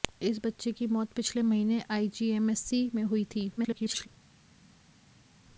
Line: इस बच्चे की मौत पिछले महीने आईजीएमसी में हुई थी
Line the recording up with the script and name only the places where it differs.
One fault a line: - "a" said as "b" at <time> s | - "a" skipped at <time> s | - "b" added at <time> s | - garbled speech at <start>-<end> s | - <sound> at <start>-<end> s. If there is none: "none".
- garbled speech at 3.6-4.1 s